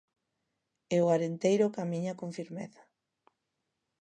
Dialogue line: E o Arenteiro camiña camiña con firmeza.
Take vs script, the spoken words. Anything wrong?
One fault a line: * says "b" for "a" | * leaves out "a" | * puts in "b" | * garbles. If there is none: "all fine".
* leaves out "camiña"